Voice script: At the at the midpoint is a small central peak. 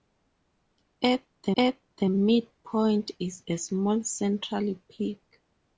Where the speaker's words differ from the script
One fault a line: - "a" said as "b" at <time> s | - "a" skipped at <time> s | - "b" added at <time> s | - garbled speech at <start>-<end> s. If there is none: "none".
none